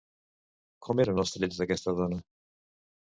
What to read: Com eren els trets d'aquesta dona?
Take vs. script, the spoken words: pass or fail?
pass